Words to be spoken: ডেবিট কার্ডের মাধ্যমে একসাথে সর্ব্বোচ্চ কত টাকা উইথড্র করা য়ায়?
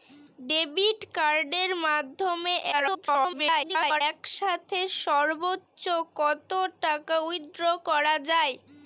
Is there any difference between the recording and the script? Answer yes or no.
yes